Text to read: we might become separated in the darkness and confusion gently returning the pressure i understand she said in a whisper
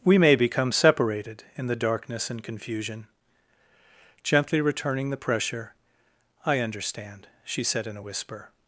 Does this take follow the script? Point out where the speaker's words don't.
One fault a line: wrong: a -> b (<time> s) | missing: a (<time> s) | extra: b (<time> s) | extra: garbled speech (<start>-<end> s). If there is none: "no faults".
wrong: might -> may (0.2 s)